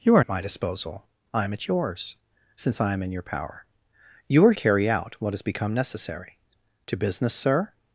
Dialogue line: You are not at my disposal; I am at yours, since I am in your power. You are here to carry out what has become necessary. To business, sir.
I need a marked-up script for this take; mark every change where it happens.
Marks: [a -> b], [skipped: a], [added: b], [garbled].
You are [skipped: not] at my disposal; I am at yours, since I am in your power. You are [skipped: here to] carry out what has become necessary. To business, sir.